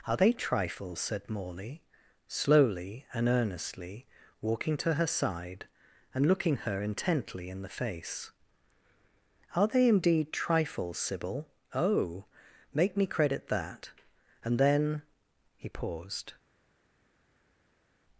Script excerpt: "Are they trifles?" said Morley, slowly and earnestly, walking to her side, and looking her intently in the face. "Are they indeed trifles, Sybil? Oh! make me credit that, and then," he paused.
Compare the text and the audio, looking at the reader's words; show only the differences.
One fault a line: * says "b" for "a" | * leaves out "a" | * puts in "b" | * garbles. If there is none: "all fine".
all fine